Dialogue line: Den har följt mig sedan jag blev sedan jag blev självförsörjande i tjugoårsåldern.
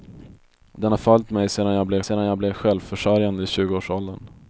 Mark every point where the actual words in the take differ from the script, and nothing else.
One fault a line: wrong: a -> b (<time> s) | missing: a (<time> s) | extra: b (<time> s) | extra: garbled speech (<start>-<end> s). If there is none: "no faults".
no faults